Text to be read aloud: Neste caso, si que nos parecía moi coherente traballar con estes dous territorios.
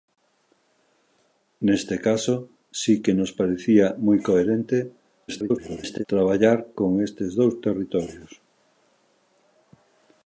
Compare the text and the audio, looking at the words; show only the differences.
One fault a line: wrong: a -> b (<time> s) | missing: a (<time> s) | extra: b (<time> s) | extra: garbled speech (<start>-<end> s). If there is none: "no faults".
extra: garbled speech (5.3-6.0 s)